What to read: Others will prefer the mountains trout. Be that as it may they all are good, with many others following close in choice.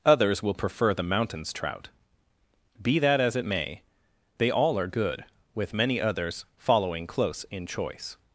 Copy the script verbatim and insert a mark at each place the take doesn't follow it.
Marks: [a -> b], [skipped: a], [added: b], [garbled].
Others will prefer the mountains trout. Be that as it may they all are good, with many others following close in choice.